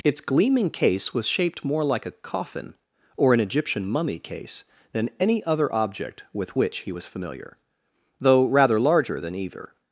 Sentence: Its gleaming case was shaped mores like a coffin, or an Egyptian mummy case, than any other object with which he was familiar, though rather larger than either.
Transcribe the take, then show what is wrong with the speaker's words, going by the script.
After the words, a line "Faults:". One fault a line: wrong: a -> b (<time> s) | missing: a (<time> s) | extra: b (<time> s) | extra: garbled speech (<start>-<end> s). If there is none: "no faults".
Its gleaming case was shaped more like a coffin, or an Egyptian mummy case, than any other object with which he was familiar, though rather larger than either.
Faults:
wrong: mores -> more (1.6 s)